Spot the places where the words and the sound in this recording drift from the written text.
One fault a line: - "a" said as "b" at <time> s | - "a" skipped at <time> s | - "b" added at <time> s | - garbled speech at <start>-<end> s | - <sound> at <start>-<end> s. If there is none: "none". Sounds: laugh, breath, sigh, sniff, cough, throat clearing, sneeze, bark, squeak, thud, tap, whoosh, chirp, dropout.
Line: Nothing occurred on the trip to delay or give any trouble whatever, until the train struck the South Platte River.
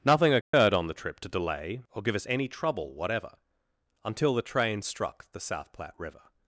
- dropout at 0.4-0.5 s
- "us" added at 2.1 s